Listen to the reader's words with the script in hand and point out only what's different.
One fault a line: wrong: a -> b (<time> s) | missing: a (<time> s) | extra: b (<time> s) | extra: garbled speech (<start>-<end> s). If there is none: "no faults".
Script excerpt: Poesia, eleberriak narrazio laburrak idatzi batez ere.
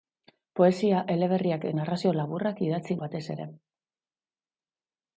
no faults